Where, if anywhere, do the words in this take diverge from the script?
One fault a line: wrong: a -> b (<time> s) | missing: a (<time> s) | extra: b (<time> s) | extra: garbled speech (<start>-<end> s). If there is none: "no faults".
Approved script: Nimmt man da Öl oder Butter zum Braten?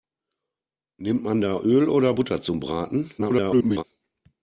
extra: garbled speech (3.2-3.8 s)